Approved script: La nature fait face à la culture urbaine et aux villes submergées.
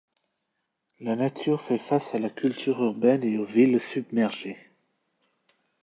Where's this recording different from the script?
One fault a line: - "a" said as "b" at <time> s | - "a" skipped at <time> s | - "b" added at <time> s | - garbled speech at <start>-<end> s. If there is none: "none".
none